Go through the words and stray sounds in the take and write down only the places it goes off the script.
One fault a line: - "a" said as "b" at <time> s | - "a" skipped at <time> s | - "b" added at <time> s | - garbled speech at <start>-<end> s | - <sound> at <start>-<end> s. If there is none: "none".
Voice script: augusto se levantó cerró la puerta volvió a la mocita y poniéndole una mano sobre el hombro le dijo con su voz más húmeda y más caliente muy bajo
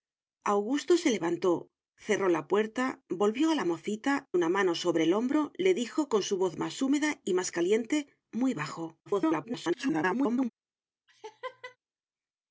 - "y poniéndole" skipped at 4.2 s
- garbled speech at 9.1-10.5 s
- laugh at 11.1-11.8 s